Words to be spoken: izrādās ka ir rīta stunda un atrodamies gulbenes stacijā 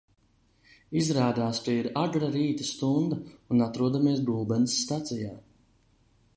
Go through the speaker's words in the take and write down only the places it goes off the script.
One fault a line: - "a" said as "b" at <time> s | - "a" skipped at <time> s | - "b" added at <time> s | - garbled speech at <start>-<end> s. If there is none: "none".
- "agra" added at 2.0 s